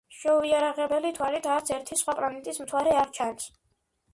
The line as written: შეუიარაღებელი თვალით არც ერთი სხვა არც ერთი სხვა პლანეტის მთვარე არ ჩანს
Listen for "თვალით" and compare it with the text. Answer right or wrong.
right